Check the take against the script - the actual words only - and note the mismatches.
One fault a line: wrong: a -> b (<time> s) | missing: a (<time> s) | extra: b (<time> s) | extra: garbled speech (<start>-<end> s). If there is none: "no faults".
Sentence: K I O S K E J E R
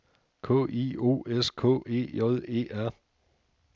no faults